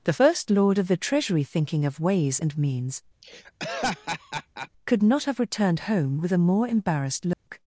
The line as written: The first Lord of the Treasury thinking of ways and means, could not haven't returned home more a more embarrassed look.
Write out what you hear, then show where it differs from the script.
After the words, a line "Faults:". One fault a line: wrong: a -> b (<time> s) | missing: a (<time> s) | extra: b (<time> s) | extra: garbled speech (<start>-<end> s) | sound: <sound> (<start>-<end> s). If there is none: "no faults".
The first Lord of the Treasury thinking of ways and means, could not have returned home with a more embarrassed look.
Faults:
sound: laugh (3.2-4.7 s)
wrong: haven't -> have (5.2 s)
wrong: more -> with (6.2 s)
sound: dropout (7.3-7.5 s)